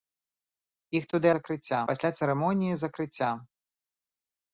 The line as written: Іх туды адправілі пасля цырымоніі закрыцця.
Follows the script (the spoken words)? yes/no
no